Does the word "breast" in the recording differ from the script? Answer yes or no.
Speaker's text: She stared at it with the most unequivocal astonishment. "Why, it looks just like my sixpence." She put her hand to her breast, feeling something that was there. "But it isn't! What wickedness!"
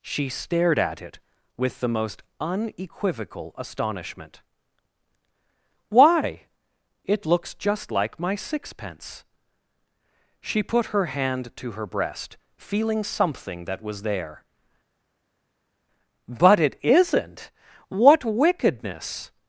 no